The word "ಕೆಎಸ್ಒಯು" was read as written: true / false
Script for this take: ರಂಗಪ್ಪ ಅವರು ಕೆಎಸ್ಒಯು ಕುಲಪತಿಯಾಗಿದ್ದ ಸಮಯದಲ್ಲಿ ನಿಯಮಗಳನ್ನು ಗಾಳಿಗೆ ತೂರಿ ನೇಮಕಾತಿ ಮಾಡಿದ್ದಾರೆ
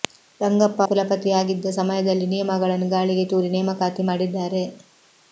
false